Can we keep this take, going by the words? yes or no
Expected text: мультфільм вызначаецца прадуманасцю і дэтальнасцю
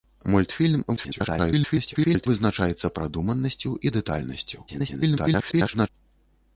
no